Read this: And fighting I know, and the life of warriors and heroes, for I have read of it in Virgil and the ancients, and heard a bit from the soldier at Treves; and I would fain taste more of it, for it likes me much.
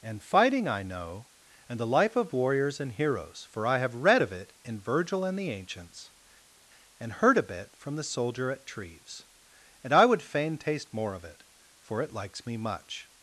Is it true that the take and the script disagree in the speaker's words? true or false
false